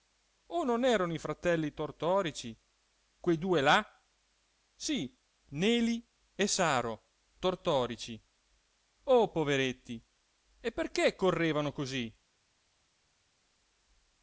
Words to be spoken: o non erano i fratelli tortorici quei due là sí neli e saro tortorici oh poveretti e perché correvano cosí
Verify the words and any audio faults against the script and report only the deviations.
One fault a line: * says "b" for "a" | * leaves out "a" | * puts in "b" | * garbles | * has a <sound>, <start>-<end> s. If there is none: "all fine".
all fine